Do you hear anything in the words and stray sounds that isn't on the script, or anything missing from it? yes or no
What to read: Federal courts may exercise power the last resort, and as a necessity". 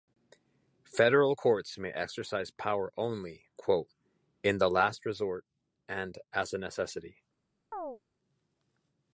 yes